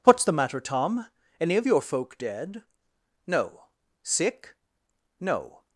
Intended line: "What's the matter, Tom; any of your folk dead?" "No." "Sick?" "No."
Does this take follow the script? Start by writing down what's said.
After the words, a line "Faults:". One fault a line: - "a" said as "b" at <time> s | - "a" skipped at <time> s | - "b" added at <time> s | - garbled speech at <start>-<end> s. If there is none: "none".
"What's the matter, Tom; any of your folk dead?" "No." "Sick?" "No."
Faults:
none